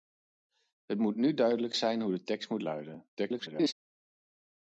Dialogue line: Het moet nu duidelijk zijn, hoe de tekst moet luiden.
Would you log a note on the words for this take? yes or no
yes